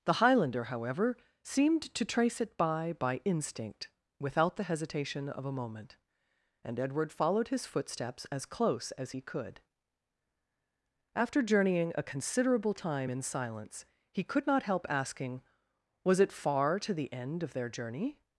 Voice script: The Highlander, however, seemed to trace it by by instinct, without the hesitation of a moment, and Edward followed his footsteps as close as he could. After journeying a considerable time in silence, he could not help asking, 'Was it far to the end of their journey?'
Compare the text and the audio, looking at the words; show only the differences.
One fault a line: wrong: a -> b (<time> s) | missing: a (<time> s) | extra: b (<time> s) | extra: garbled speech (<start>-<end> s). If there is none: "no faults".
no faults